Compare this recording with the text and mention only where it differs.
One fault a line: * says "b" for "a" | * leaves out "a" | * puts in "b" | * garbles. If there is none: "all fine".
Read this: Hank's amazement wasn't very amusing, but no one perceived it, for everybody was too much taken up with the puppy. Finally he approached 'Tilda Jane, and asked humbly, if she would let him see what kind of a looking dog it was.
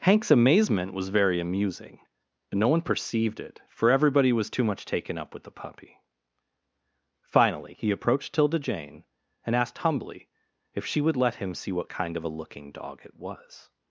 * says "was" for "wasn't"